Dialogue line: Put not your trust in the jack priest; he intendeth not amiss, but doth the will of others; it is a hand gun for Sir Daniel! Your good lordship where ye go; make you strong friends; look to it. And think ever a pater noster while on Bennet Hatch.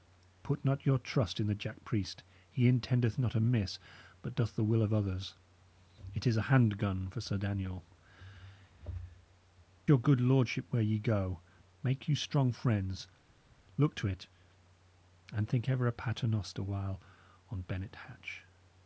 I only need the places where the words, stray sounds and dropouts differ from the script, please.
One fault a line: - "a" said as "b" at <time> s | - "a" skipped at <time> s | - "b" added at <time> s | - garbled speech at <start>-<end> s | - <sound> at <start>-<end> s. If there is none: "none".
none